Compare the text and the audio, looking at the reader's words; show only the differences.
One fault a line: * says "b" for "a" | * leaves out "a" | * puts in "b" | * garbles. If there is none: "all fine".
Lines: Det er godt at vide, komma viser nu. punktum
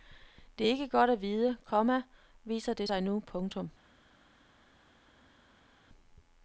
* puts in "ikke"
* puts in "det sig"